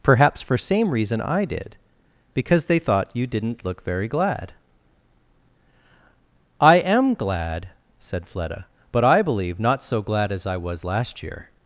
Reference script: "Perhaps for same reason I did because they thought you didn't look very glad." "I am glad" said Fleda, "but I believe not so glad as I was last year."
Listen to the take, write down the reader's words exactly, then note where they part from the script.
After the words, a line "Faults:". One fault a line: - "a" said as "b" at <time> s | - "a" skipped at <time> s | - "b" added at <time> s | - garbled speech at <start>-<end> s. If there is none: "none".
"Perhaps for same reason I did because they thought you didn't look very glad." "I am glad" said Fleda, "but I believe not so glad as I was last year."
Faults:
none